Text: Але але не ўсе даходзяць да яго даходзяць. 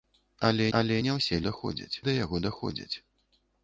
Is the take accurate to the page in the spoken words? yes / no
yes